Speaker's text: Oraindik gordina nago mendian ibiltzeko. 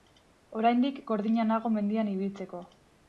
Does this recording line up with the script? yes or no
yes